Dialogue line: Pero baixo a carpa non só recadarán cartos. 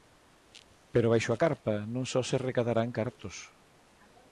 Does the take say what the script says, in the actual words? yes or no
no